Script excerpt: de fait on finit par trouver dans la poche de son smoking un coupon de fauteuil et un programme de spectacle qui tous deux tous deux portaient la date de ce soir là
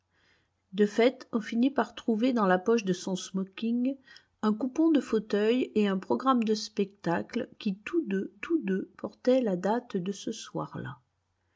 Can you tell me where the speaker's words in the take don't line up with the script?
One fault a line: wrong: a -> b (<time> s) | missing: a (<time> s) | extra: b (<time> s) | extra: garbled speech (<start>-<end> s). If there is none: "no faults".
no faults